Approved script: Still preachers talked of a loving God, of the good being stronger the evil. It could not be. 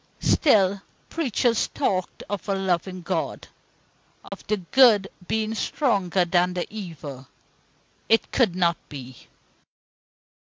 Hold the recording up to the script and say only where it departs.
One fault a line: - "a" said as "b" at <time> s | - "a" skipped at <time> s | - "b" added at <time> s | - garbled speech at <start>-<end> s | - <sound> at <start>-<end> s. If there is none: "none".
- dropout at 4.3-4.3 s
- "than" added at 6.2 s